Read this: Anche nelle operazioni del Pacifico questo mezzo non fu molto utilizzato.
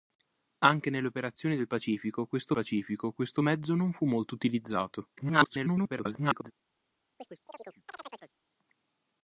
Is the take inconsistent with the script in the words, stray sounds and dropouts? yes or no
yes